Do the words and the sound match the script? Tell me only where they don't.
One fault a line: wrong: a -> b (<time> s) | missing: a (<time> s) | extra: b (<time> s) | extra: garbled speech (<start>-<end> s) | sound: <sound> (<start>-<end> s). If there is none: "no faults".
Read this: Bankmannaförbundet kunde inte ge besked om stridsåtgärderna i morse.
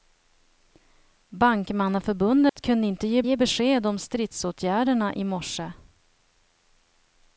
sound: dropout (2.5-2.6 s)
extra: ge (3.2 s)